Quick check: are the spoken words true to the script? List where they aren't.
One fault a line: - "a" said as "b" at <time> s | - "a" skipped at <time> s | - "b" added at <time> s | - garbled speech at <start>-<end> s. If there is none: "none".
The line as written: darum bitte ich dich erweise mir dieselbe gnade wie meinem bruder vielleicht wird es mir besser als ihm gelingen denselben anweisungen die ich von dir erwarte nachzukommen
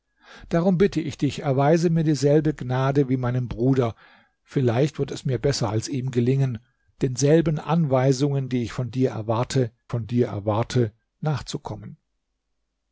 - "von dir erwarte" added at 9.9 s